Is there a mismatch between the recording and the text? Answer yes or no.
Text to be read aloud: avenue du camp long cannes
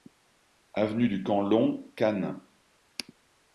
no